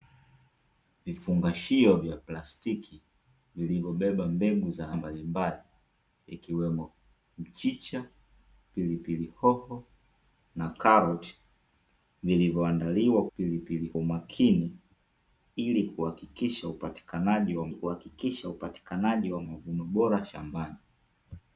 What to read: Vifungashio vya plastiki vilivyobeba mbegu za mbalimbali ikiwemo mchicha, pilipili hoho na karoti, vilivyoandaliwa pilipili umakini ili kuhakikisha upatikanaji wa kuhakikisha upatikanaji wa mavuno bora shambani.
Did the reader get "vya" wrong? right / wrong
right